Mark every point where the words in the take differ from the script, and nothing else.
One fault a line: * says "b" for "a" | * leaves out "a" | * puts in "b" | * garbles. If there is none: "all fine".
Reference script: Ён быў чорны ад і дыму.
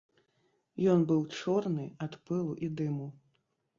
* puts in "пылу"